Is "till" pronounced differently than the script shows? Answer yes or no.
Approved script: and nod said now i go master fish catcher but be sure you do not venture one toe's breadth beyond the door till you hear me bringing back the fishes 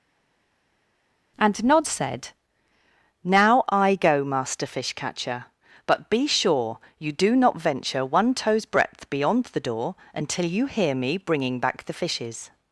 yes